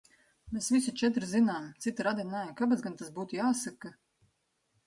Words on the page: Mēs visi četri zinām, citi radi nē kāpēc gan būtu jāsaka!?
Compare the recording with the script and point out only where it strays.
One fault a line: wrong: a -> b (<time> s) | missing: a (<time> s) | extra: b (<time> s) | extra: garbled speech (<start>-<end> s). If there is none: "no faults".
extra: tas (3.0 s)